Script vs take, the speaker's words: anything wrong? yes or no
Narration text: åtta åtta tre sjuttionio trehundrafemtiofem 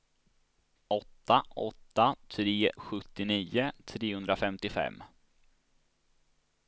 no